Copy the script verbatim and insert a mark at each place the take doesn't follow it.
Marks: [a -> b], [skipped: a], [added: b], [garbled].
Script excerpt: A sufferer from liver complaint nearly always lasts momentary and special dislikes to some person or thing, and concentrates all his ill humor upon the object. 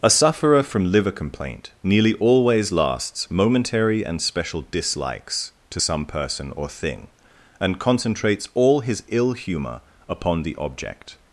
A sufferer from liver complaint nearly always lasts momentary and special dislikes to some person or thing, and concentrates all his ill humor upon the object.